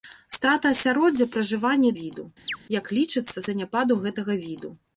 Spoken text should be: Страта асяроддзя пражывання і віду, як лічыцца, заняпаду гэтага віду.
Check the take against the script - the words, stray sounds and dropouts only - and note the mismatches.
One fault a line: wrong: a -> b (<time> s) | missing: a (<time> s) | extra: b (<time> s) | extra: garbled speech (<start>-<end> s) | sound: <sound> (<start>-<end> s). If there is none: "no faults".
sound: chirp (2.5-2.6 s)